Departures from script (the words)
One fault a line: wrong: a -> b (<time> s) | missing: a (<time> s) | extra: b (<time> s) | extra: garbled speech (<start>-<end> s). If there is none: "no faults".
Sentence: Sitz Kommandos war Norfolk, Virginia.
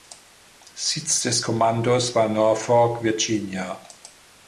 extra: des (1.2 s)